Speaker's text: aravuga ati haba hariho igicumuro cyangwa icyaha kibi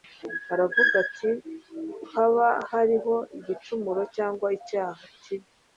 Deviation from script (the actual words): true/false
false